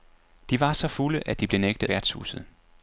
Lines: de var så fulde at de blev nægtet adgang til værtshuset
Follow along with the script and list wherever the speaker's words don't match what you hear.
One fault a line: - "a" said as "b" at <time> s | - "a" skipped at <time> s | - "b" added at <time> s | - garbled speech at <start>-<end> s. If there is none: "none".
- "adgang til" skipped at 1.9 s